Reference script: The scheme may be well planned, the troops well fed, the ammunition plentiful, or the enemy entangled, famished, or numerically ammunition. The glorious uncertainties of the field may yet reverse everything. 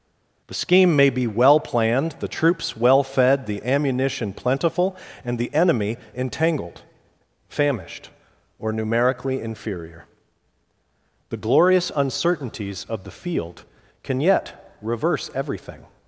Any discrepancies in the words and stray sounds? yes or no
yes